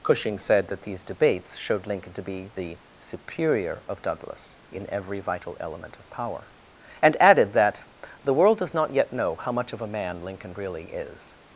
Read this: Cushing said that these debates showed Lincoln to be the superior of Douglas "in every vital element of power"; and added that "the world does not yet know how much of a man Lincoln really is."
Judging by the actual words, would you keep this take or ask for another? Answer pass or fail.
pass